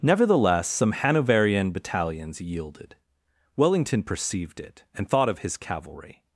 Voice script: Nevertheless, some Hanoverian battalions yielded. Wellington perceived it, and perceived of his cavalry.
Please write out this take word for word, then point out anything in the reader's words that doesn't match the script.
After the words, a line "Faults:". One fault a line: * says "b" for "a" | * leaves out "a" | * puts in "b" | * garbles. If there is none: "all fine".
Nevertheless, some Hanoverian battalions yielded. Wellington perceived it, and thought of his cavalry.
Faults:
* says "thought" for "perceived"